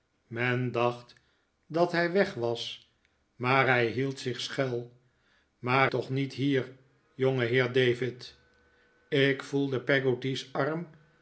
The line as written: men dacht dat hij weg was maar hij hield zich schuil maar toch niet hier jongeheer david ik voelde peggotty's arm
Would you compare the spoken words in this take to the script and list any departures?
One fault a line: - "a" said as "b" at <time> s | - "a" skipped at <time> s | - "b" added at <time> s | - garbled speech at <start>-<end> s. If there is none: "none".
none